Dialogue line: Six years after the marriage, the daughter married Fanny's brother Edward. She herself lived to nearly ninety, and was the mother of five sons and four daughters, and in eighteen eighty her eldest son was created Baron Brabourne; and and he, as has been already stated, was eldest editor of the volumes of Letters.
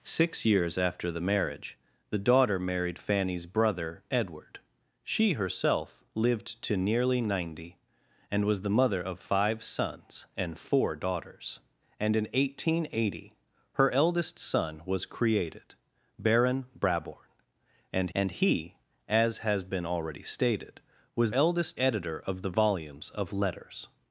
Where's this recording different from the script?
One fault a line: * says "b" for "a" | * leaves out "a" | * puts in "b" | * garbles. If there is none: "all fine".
all fine